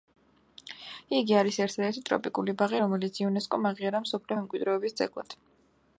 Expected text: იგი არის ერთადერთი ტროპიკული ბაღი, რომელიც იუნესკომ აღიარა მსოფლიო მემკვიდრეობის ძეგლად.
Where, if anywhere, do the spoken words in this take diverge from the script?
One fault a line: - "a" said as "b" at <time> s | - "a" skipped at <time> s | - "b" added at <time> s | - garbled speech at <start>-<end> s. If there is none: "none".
none